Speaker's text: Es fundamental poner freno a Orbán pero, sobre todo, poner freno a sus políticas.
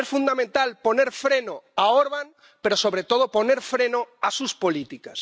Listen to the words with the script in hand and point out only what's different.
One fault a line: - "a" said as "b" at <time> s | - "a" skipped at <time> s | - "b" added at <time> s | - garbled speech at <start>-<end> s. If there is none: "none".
none